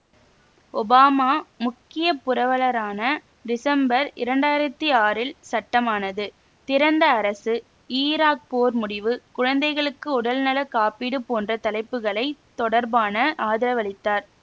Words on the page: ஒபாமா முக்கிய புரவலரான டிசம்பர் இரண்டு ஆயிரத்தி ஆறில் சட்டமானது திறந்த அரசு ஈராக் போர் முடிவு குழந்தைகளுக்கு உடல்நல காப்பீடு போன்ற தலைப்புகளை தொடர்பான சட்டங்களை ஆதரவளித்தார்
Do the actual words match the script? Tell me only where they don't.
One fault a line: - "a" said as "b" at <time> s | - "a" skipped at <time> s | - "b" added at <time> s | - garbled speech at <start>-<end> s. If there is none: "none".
- "சட்டங்களை" skipped at 13.2 s